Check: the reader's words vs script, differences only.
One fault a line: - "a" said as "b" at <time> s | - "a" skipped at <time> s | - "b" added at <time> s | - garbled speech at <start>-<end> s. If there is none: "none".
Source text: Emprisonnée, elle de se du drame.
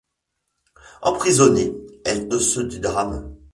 none